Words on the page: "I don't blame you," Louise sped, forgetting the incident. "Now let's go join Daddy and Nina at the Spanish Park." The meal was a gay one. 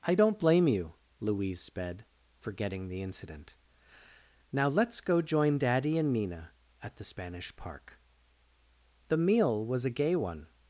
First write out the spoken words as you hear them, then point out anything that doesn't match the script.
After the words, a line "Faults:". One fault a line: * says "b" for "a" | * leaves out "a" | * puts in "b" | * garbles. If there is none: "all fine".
"I don't blame you," Louise sped, forgetting the incident. "Now let's go join Daddy and Nina at the Spanish Park." The meal was a gay one.
Faults:
all fine